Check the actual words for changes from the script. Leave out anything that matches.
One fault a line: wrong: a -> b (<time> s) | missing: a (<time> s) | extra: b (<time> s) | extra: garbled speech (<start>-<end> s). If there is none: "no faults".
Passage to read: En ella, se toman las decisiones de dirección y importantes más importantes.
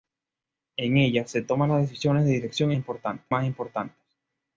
no faults